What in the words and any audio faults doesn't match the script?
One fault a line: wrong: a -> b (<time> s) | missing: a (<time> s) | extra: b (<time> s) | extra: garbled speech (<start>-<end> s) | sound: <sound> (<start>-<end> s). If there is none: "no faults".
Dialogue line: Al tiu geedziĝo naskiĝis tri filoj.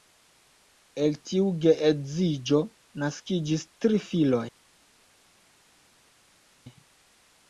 wrong: Al -> El (1.0 s)